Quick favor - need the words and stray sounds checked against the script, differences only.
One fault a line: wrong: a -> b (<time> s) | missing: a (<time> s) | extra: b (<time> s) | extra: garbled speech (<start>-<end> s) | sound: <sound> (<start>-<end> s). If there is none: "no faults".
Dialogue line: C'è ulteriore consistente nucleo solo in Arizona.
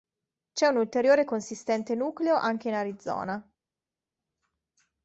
extra: un (0.7 s)
wrong: solo -> anche (2.4 s)